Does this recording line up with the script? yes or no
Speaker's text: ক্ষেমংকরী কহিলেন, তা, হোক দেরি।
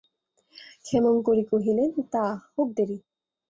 yes